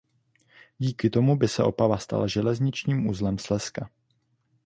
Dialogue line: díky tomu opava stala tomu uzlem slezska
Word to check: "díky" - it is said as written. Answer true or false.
true